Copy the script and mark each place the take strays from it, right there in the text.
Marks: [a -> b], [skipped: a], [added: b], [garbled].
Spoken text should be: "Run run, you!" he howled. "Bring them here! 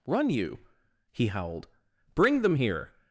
"Run [skipped: run,] you!" he howled. "Bring them here!